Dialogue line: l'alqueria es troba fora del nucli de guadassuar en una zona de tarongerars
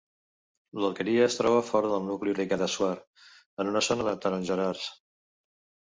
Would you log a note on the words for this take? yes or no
no